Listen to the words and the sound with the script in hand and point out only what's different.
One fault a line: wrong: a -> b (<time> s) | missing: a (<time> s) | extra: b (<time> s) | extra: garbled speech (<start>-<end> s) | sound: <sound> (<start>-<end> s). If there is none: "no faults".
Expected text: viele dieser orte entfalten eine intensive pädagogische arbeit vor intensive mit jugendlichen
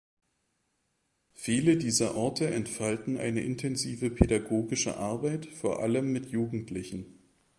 wrong: intensive -> allem (5.8 s)